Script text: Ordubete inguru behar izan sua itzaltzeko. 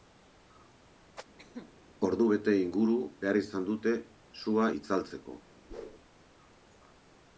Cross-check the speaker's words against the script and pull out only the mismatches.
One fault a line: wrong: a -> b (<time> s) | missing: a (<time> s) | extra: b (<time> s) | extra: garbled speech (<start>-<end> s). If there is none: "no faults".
extra: dute (3.7 s)